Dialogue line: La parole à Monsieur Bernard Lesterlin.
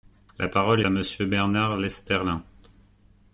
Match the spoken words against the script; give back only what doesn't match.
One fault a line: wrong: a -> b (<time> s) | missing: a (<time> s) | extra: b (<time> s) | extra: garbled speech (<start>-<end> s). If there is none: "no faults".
no faults